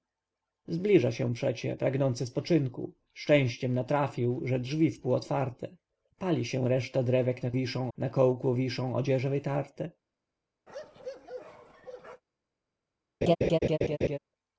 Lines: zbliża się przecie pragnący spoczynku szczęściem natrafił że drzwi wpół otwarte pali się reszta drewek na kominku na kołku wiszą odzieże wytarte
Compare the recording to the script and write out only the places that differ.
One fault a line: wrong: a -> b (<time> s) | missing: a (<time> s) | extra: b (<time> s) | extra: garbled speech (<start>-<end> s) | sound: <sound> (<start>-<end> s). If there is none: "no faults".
wrong: kominku -> wiszą (7.5 s)
sound: bark (10.7-12.2 s)
sound: laugh (13.2-14.2 s)